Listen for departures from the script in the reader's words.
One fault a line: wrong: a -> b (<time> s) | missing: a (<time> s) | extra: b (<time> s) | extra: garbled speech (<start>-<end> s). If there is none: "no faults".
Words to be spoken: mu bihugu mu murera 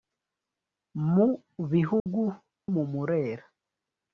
no faults